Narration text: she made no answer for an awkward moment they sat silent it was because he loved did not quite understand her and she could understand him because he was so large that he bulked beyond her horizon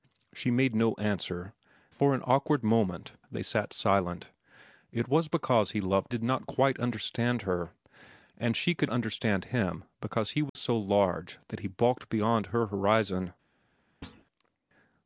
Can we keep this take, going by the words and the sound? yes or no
no